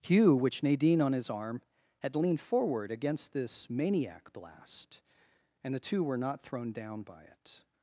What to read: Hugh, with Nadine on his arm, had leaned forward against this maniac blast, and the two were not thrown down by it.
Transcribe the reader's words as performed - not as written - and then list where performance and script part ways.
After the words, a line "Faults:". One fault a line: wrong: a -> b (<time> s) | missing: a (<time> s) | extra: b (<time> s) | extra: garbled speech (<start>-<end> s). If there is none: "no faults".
Hugh, which Nadine on his arm, had leaned forward against this maniac blast, and the two were not thrown down by it.
Faults:
wrong: with -> which (0.3 s)